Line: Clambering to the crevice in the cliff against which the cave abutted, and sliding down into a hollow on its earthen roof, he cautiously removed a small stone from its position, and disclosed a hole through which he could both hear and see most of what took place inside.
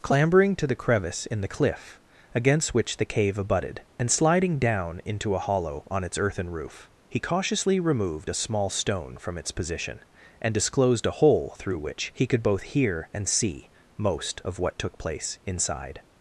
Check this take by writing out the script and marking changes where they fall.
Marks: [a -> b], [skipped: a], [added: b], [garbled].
Clambering to the crevice in the cliff against which the cave abutted, and sliding down into a hollow on its earthen roof, he cautiously removed a small stone from its position, and disclosed a hole through which he could both hear and see most of what took place inside.